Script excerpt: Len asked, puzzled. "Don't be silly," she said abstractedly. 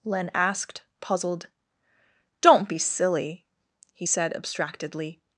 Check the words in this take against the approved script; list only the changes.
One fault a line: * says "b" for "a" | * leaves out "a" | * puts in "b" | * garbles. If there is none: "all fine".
* says "he" for "she"